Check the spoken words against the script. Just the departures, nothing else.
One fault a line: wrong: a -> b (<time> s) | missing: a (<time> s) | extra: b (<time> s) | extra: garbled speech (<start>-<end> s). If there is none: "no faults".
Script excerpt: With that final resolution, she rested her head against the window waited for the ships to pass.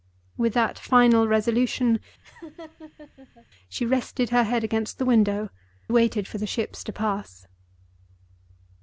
no faults